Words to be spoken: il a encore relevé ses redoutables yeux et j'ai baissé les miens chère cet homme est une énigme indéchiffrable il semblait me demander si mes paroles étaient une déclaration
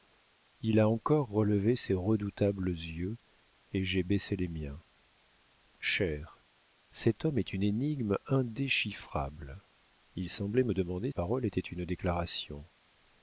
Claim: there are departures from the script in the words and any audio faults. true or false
true